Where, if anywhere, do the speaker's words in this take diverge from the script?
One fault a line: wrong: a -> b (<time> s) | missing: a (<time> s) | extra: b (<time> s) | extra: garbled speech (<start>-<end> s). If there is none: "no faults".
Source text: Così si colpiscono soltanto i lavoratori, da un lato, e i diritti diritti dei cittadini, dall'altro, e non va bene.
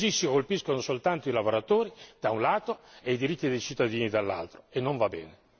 missing: diritti (3.5 s)